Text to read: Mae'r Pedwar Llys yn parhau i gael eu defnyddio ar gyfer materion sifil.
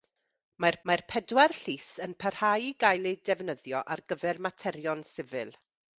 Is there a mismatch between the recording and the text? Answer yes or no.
yes